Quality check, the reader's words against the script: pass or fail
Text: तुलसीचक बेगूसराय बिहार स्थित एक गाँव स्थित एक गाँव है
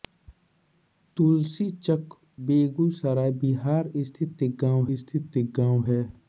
pass